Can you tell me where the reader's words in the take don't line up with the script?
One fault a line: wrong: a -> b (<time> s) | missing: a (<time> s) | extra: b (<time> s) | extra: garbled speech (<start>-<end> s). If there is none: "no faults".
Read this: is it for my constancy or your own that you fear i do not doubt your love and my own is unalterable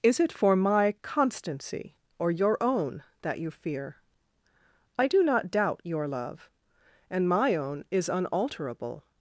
no faults